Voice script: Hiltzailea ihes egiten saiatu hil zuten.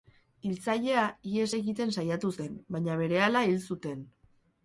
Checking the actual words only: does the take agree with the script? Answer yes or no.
no